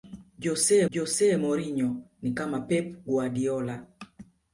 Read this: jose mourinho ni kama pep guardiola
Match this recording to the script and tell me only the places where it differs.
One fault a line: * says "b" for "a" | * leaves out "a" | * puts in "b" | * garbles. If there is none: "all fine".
* puts in "jose"